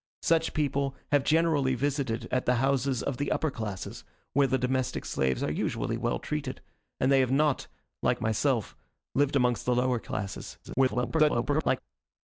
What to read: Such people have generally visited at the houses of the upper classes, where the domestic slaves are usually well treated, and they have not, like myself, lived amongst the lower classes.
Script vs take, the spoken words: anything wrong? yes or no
yes